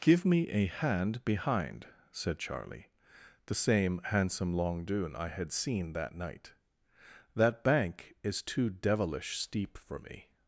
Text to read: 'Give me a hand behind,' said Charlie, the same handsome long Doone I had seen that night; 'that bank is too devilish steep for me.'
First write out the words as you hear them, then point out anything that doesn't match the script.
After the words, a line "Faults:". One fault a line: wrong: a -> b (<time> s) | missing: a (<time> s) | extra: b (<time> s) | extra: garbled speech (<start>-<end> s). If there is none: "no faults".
'Give me a hand behind,' said Charlie, the same handsome long Doone I had seen that night; 'that bank is too devilish steep for me.'
Faults:
no faults